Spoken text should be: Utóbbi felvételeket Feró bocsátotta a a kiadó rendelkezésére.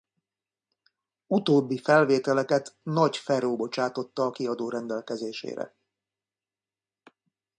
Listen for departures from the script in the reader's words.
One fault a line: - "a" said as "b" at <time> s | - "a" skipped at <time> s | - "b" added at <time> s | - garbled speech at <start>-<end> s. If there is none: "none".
- "Nagy" added at 2.8 s
- "a" skipped at 4.3 s